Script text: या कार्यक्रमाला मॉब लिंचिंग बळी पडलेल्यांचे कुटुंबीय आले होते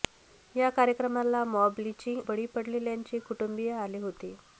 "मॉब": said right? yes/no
yes